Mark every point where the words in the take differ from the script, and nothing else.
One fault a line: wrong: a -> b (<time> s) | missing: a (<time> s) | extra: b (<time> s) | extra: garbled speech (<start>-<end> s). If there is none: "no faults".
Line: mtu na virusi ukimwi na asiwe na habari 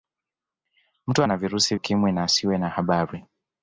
no faults